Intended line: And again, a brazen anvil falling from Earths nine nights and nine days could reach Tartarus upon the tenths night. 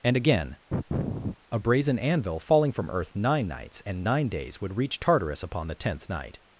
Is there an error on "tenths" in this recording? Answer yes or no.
yes